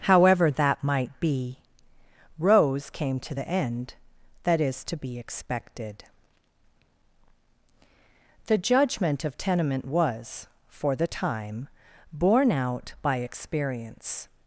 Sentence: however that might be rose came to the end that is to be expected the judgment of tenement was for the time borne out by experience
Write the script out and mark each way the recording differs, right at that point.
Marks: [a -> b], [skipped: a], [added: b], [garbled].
however that might be rose came to the end that is to be expected the judgment of tenement was for the time borne out by experience